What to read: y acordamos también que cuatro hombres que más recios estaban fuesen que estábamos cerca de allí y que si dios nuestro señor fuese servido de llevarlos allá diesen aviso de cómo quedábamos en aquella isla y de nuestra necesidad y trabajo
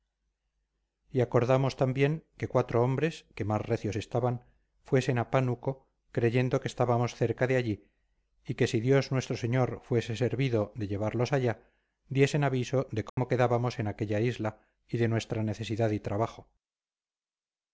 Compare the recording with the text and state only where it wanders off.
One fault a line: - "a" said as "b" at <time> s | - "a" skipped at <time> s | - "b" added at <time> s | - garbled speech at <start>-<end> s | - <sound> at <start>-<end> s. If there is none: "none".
- "a pánuco creyendo" added at 5.2 s
- dropout at 13.1-13.2 s